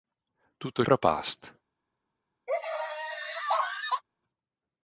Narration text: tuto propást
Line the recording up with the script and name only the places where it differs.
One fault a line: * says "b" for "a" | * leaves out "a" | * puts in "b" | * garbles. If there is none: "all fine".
all fine